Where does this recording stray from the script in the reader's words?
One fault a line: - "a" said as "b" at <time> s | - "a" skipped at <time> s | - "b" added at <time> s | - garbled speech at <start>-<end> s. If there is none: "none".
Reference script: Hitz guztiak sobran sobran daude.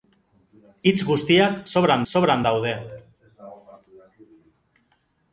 none